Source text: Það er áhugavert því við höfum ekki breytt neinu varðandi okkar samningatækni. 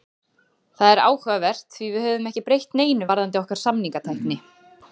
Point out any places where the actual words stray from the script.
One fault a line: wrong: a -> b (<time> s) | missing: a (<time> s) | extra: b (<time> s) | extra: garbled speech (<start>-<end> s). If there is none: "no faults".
no faults